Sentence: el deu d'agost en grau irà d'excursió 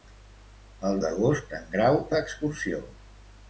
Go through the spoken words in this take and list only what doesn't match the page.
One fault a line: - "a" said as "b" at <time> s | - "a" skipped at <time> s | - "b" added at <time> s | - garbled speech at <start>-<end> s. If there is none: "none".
- "deu" skipped at 0.9 s
- "irà" skipped at 2.0 s